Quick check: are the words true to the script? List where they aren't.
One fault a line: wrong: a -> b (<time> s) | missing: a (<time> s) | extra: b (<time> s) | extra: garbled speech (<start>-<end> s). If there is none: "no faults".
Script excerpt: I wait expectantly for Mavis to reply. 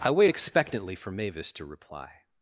no faults